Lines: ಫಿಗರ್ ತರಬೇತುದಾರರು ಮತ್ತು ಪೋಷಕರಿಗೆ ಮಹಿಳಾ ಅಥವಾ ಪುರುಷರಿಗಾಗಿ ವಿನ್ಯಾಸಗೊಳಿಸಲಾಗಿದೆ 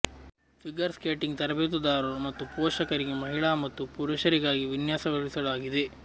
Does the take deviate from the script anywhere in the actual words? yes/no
yes